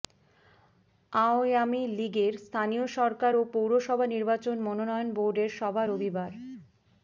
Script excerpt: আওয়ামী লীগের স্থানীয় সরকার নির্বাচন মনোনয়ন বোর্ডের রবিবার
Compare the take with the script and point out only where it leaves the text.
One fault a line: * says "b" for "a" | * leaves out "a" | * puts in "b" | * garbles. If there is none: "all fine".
* puts in "ও পৌরসভা"
* puts in "সভা"